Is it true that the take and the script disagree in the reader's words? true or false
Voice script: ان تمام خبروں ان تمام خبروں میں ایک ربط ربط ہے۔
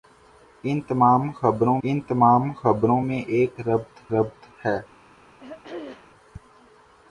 false